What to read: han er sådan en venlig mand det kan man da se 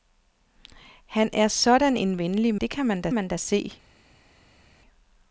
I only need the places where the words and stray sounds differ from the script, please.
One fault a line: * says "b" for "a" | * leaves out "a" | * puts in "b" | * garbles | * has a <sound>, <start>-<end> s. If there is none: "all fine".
* leaves out "mand"
* puts in "man da"